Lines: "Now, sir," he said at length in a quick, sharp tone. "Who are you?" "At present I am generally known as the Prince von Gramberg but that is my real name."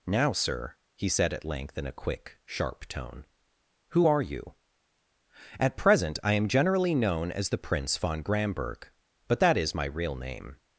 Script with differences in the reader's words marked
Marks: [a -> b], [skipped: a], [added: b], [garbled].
"Now, sir," he said at length in a quick, sharp tone. "Who are you?" "At present I am generally known as the Prince von Gramberg but that is my real name."